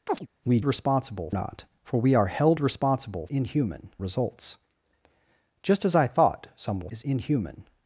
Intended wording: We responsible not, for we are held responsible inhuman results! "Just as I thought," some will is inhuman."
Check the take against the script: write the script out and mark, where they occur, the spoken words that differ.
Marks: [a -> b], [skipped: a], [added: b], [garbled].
We responsible not, for we are held responsible inhuman results! "Just as I thought," some will is inhuman."